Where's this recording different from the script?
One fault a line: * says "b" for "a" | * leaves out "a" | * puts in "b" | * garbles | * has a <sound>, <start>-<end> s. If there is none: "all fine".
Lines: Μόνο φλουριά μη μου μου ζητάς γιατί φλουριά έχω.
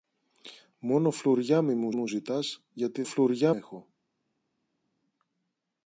all fine